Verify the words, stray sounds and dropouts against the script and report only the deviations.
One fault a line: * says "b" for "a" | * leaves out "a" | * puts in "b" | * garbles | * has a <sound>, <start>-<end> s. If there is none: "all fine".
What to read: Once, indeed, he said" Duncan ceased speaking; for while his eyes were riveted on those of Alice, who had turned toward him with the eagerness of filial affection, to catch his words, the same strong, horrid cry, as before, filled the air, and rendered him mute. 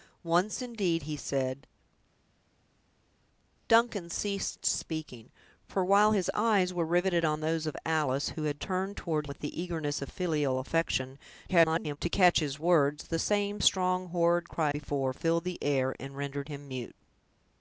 * leaves out "him"
* garbles
* leaves out "as"